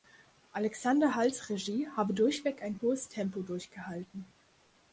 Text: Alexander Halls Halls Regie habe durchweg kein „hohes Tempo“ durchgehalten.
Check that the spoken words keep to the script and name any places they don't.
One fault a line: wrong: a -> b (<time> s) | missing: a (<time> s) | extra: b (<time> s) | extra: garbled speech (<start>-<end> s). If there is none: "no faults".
missing: Halls (1.5 s)
wrong: kein -> ein (2.6 s)